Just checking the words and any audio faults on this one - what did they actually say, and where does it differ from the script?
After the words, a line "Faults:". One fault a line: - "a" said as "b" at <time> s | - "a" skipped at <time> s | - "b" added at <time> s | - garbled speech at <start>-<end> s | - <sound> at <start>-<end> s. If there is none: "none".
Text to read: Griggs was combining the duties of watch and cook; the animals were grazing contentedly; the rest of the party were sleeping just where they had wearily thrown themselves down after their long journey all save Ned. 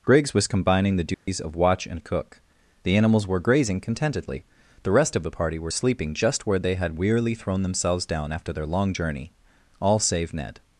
Griggs was combining the duties of watch and cook; the animals were grazing contentedly; the rest of the party were sleeping just where they had wearily thrown themselves down after their long journey all save Ned.
Faults:
- dropout at 1.1-1.3 s